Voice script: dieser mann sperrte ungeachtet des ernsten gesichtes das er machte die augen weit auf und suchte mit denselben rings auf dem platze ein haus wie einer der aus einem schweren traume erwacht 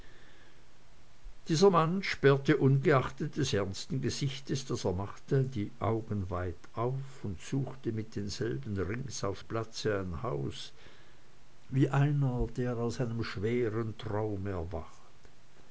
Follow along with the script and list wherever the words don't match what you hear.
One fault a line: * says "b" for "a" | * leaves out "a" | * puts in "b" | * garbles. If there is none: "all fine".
* leaves out "dem"